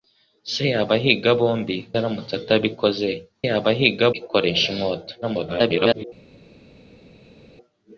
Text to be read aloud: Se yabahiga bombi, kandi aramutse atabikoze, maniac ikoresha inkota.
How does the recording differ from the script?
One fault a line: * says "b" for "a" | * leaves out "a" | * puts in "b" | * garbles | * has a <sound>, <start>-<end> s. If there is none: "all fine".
* leaves out "kandi"
* says "yabahiga" for "maniac"
* garbles